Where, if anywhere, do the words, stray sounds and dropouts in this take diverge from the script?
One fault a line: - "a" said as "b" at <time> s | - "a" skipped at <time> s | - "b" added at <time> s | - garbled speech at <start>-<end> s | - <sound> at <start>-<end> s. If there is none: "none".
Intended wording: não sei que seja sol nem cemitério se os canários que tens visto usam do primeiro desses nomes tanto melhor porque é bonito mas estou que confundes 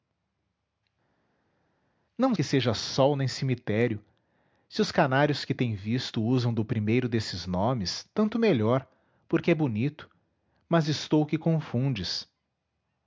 - "sei" skipped at 2.4 s